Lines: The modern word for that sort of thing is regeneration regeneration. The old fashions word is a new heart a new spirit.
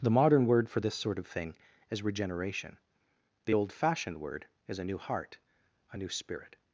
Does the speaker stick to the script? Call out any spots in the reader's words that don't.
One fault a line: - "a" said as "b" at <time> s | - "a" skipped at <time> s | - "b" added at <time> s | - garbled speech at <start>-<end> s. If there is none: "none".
- "that" said as "this" at 0.8 s
- "regeneration" skipped at 2.8 s
- "fashions" said as "fashioned" at 3.7 s